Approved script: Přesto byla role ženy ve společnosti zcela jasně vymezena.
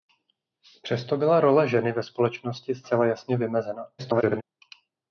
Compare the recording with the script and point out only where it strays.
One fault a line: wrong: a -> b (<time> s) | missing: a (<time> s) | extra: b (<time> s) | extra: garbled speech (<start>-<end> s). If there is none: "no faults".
extra: garbled speech (4.0-4.4 s)